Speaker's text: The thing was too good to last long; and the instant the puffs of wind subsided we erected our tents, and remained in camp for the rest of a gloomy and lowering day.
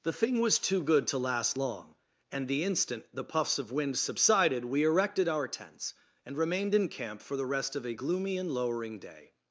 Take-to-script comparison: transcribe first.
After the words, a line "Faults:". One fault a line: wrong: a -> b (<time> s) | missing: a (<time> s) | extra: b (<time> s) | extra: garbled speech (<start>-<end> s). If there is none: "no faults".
The thing was too good to last long; and the instant the puffs of wind subsided we erected our tents, and remained in camp for the rest of a gloomy and lowering day.
Faults:
no faults